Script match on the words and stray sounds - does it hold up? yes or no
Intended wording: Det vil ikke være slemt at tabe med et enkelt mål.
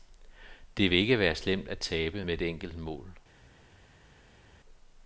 yes